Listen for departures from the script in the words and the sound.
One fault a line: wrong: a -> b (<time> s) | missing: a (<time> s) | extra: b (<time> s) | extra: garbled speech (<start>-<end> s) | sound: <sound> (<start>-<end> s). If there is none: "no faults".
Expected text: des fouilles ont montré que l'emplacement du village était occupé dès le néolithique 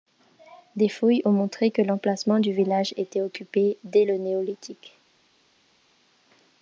no faults